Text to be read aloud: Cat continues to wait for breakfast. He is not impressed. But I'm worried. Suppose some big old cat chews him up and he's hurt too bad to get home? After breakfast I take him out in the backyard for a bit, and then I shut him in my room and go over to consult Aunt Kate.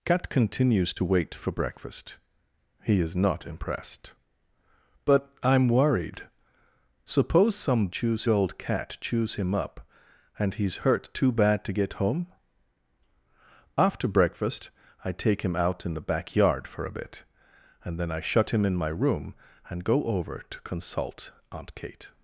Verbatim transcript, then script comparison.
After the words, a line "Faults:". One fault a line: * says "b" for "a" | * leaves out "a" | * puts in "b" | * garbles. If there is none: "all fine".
Cat continues to wait for breakfast. He is not impressed. But I'm worried. Suppose some chews old cat chews him up and he's hurt too bad to get home? After breakfast I take him out in the backyard for a bit, and then I shut him in my room and go over to consult Aunt Kate.
Faults:
* says "chews" for "big"